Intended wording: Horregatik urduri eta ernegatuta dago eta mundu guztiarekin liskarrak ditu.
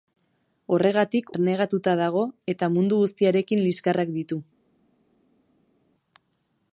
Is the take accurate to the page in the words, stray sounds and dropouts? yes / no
no